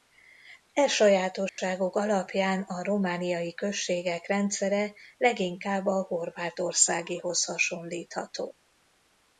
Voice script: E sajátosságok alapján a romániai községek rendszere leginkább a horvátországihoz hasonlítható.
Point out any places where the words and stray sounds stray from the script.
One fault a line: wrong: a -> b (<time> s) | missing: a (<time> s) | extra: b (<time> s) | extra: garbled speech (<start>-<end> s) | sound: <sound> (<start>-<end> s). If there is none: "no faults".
sound: dropout (1.5-1.6 s)